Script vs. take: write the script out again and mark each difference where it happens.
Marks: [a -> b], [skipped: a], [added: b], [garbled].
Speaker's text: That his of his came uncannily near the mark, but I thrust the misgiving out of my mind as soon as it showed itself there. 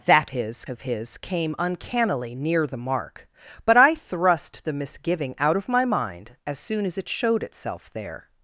That his of his came uncannily near the mark, but I thrust the misgiving out of my mind as soon as it showed itself there.